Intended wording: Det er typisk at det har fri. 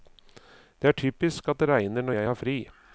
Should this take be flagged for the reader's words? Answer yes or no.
yes